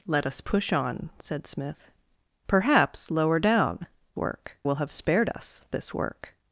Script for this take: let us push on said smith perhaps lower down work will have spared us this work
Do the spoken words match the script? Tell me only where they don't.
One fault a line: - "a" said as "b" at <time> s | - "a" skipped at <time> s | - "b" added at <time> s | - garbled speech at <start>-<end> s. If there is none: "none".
none